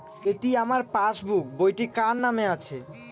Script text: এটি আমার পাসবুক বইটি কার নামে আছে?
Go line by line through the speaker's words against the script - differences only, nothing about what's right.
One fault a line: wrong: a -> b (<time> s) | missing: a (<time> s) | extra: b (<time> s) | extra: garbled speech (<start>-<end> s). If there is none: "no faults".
no faults